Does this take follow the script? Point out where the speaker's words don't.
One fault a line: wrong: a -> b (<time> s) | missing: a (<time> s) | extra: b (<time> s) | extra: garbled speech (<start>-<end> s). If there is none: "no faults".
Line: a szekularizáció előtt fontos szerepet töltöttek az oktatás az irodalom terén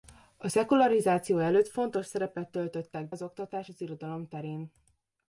no faults